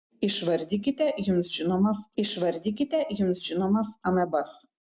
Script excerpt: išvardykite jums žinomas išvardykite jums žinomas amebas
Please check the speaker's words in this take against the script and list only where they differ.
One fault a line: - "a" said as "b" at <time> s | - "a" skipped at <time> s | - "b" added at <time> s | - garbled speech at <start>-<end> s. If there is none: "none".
none